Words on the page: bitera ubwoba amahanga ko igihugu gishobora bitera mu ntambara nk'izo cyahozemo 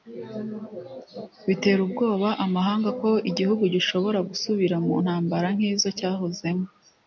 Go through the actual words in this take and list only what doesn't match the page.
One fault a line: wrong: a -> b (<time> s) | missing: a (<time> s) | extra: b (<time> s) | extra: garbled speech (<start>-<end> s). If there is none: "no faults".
wrong: bitera -> gusubira (4.3 s)